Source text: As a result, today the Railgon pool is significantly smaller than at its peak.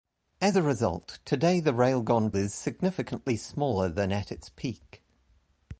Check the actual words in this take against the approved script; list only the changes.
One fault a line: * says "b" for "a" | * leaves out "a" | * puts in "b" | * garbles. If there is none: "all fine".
* leaves out "pool"